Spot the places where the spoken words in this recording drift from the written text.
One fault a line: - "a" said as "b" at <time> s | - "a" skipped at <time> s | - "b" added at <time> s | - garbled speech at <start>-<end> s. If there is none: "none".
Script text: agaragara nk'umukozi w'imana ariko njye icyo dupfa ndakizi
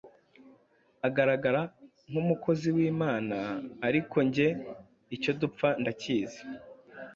none